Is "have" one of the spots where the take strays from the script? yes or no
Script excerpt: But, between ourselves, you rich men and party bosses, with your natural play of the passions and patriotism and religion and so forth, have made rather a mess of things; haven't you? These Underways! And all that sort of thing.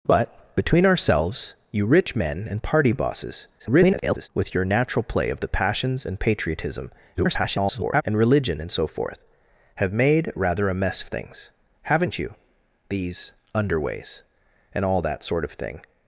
no